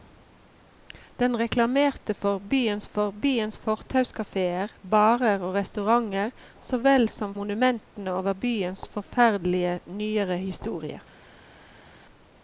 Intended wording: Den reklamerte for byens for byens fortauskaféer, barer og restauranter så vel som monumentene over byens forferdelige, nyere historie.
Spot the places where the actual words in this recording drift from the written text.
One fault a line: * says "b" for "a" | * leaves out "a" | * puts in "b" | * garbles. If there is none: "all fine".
all fine